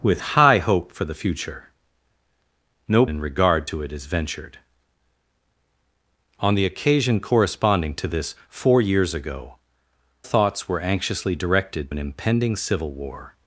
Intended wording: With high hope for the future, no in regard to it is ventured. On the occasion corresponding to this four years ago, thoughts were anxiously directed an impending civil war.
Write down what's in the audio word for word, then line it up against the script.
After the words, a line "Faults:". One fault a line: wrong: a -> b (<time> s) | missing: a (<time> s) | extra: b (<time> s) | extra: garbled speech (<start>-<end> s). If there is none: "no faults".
With high hope for the future, no in regard to it is ventured. On the occasion corresponding to this four years ago, thoughts were anxiously directed an impending civil war.
Faults:
no faults